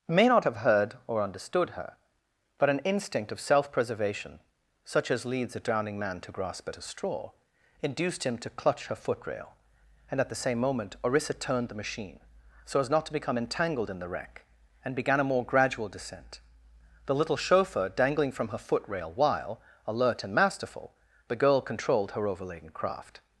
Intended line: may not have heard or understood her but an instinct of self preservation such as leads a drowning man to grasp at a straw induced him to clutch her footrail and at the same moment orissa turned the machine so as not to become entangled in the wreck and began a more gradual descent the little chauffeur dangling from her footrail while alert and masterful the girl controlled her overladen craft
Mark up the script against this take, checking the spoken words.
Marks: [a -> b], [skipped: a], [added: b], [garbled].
may not have heard or understood her but an instinct of self preservation such as leads a drowning man to grasp at a straw induced him to clutch her footrail and at the same moment orissa turned the machine so as not to become entangled in the wreck and began a more gradual descent the little chauffeur dangling from her footrail while alert and masterful the girl controlled her overladen craft